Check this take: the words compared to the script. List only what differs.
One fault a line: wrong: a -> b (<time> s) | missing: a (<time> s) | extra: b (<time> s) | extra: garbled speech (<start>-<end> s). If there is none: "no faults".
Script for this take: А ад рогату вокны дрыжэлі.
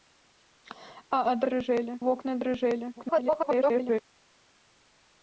wrong: рогату -> дрыжэлі (1.5 s)
extra: garbled speech (3.0-4.0 s)